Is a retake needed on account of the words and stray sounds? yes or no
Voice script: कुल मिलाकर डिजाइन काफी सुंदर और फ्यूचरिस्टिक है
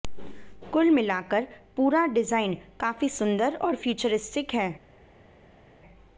yes